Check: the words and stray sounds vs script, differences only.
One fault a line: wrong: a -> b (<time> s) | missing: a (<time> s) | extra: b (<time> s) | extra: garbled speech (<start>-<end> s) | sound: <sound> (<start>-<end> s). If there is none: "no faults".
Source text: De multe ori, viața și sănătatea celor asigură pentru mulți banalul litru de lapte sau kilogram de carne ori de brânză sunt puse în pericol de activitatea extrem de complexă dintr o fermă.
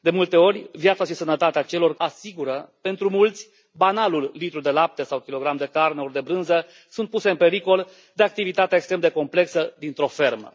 no faults